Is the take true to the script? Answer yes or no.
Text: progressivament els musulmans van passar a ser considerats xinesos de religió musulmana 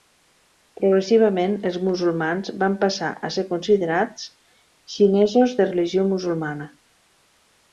yes